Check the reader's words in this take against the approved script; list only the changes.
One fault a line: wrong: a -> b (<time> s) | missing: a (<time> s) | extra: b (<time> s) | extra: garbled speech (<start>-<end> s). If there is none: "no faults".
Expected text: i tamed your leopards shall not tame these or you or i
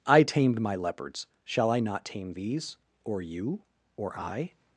wrong: your -> my (0.6 s)
extra: i (1.7 s)